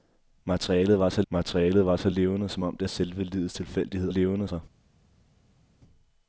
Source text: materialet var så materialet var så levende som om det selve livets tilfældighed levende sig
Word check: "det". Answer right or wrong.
right